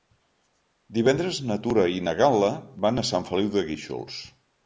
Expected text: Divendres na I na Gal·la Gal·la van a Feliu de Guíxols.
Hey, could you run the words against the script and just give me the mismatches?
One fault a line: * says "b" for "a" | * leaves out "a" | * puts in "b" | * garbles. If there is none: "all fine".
* puts in "Tura"
* leaves out "Gal·la"
* puts in "Sant"